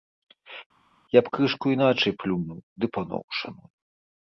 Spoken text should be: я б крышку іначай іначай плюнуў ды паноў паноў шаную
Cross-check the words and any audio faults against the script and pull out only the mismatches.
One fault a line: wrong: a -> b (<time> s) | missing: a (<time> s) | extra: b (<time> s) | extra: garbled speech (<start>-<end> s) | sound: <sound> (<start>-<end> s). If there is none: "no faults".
missing: іначай (2.1 s)
missing: паноў (3.2 s)